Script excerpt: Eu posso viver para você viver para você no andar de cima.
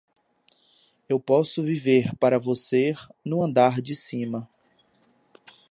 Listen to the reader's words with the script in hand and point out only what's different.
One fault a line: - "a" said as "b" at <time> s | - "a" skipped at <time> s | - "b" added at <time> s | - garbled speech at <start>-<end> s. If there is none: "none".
- "viver para você" skipped at 2.9 s